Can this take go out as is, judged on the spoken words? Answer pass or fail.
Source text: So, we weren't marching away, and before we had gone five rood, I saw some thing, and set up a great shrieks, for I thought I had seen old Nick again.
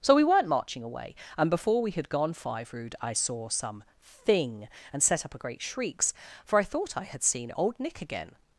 pass